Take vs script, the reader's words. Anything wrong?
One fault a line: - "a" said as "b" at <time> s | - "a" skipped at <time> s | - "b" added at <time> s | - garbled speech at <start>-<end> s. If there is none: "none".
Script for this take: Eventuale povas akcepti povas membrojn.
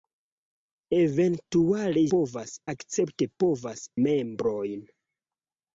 none